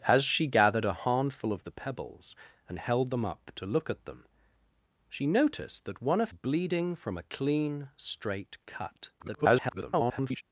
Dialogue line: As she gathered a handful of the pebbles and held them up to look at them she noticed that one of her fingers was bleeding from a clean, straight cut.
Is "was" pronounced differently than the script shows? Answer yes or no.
yes